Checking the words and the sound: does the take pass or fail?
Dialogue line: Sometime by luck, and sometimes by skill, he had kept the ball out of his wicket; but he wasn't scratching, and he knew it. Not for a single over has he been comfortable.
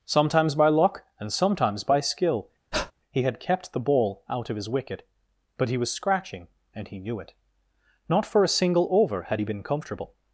fail